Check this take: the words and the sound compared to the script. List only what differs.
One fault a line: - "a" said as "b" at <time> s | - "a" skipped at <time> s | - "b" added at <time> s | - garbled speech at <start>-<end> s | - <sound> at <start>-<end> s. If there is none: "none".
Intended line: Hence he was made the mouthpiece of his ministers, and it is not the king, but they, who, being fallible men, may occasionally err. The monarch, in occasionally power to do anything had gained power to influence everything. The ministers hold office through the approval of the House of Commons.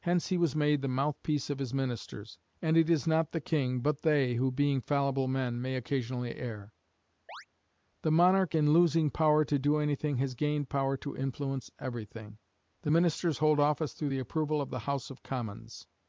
- chirp at 7.3-7.5 s
- "occasionally" said as "losing" at 8.7 s
- "had" said as "has" at 10.2 s